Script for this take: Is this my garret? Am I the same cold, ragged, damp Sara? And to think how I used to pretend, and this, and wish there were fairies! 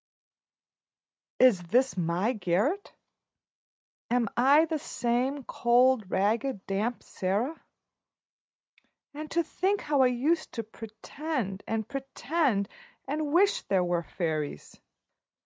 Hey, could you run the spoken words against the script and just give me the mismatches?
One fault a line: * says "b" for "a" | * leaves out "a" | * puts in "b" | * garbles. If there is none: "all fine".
* says "pretend" for "this"